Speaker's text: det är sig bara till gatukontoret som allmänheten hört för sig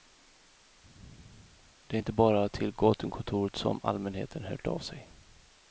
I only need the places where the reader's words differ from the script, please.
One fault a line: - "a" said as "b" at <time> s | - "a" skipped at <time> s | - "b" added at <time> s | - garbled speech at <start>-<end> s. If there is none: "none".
- "sig" said as "inte" at 2.0 s
- "för" said as "av" at 4.7 s